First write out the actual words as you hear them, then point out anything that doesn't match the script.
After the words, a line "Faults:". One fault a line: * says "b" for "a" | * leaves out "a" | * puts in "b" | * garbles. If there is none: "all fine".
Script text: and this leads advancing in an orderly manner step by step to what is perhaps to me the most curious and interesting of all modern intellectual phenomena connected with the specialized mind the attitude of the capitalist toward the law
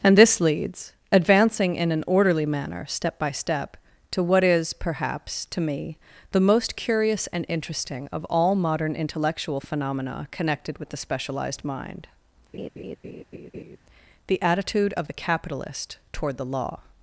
and this leads advancing in an orderly manner step by step to what is perhaps to me the most curious and interesting of all modern intellectual phenomena connected with the specialized mind the attitude of the capitalist toward the law
Faults:
all fine